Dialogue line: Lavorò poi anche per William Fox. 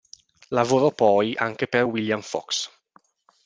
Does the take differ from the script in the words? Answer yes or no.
no